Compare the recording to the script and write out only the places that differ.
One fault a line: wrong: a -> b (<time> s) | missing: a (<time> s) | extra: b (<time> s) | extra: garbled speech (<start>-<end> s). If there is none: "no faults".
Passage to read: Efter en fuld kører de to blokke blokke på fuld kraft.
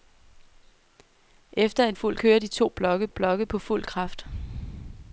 no faults